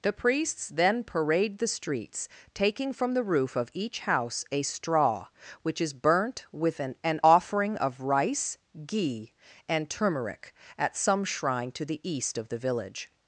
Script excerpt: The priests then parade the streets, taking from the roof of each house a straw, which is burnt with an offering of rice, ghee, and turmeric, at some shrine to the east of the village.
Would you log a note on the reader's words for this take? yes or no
yes